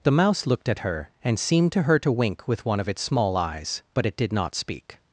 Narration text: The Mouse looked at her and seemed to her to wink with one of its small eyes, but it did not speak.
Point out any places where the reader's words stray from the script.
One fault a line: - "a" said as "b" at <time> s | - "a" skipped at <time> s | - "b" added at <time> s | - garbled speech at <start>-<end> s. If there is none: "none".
none